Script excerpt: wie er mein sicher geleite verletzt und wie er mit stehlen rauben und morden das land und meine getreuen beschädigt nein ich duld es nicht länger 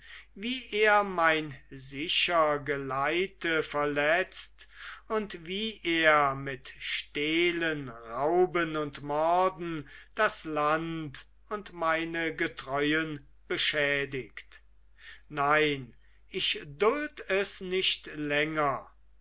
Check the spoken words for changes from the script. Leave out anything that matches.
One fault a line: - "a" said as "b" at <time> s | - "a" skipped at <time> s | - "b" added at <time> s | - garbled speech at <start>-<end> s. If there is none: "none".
none